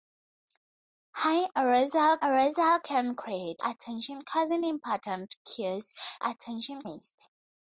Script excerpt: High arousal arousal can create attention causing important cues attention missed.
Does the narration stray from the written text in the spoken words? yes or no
no